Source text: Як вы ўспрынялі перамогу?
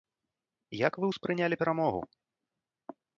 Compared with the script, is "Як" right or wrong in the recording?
right